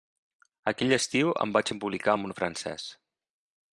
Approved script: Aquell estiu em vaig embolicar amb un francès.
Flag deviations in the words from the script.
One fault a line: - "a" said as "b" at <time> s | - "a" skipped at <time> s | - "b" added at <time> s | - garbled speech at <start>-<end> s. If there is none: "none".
none